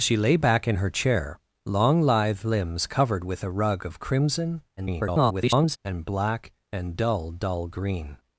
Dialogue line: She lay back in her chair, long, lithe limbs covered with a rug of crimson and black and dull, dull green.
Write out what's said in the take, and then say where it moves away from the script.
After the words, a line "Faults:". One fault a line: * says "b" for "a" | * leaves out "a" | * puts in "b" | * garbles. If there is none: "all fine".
She lay back in her chair, long, lithe limbs covered with a rug of crimson [garbled] and black and dull, dull green.
Faults:
* garbles